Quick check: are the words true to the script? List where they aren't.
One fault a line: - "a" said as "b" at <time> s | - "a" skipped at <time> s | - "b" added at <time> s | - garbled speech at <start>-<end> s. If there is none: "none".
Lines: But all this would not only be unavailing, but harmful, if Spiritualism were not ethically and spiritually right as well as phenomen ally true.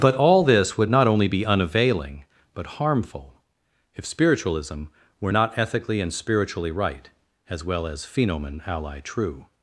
none